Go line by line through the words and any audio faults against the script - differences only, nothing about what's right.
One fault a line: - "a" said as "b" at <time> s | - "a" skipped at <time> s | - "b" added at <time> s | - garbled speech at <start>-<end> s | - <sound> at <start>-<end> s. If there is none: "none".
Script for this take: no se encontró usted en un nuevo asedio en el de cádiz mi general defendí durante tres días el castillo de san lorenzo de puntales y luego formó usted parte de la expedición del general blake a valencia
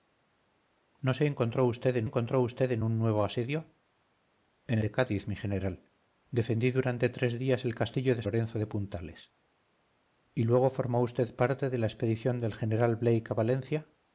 - "encontró usted en" added at 2.0 s
- "el" skipped at 4.8 s
- "san" skipped at 8.2 s